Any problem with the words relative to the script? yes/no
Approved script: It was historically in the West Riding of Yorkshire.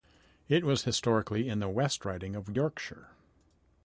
no